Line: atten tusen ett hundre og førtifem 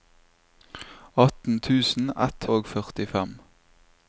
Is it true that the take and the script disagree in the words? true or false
true